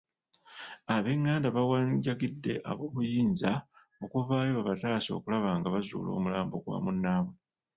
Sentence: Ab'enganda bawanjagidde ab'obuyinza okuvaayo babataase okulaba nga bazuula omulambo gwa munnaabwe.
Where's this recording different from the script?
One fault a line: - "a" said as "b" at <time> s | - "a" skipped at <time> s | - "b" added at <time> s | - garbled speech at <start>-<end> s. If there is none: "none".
none